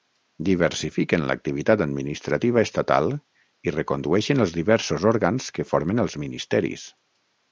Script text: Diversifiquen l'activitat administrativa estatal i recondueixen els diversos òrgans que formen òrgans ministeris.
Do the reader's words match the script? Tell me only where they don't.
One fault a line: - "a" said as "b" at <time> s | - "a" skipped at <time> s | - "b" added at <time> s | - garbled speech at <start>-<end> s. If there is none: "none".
- "òrgans" said as "els" at 6.0 s